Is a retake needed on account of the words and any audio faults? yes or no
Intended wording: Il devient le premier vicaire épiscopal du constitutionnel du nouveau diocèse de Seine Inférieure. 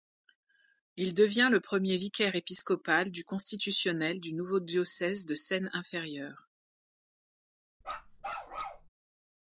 yes